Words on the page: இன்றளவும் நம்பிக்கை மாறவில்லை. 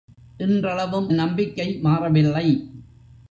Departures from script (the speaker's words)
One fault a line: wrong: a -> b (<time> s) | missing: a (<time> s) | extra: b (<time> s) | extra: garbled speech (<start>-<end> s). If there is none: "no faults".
no faults